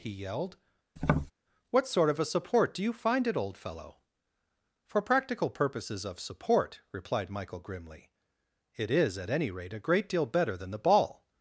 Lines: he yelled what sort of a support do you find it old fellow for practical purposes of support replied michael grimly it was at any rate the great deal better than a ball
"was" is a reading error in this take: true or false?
true